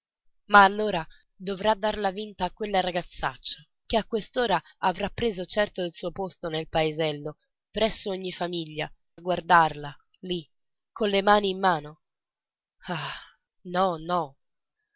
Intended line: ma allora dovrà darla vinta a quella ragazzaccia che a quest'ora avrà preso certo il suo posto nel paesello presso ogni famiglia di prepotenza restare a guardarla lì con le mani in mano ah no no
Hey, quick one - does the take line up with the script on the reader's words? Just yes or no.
no